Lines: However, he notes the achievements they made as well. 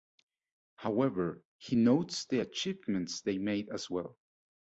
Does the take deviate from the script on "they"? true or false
false